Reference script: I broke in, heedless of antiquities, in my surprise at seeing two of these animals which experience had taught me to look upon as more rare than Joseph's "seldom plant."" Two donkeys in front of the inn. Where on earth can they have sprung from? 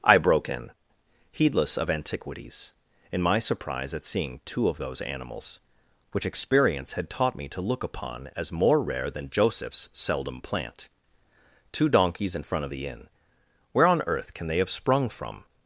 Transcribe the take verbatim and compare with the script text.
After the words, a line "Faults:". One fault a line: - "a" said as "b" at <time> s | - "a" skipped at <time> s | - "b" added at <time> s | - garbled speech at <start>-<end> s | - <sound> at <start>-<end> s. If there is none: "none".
I broke in, heedless of antiquities, in my surprise at seeing two of those animals which experience had taught me to look upon as more rare than Joseph's "seldom plant."" Two donkeys in front of the inn. Where on earth can they have sprung from?
Faults:
- "these" said as "those" at 4.8 s